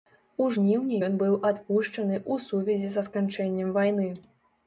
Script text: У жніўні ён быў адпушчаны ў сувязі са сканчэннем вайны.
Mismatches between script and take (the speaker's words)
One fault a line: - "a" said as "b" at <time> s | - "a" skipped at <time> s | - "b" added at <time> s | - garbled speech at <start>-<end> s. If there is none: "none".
none